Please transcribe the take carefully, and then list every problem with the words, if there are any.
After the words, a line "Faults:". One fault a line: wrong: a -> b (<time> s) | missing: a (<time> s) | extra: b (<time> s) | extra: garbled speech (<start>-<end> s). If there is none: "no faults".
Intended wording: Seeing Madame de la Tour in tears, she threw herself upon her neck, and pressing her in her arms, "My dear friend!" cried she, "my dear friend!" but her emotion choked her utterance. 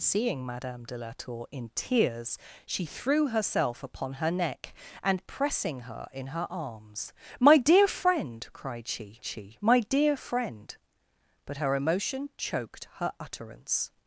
Seeing Madame de la Tour in tears, she threw herself upon her neck, and pressing her in her arms, "My dear friend!" cried she she, "my dear friend!" but her emotion choked her utterance.
Faults:
extra: she (9.2 s)